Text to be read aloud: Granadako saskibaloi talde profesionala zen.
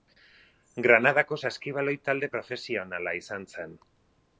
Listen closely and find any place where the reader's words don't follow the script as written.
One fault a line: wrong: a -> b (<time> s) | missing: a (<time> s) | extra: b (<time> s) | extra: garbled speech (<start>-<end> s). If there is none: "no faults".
extra: izan (3.2 s)